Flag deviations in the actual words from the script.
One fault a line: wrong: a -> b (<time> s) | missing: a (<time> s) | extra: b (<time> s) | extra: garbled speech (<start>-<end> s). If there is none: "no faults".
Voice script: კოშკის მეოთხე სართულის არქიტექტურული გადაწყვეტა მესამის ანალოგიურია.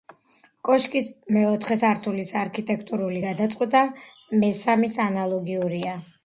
no faults